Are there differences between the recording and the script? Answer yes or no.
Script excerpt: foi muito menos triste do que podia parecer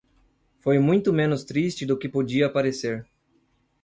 no